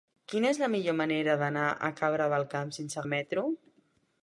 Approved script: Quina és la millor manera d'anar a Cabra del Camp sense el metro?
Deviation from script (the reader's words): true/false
false